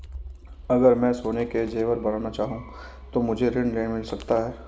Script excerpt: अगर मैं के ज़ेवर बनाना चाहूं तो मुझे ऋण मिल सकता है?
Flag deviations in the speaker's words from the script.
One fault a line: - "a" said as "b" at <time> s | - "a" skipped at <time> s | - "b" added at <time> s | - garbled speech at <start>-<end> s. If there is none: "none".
- "सोने" added at 1.1 s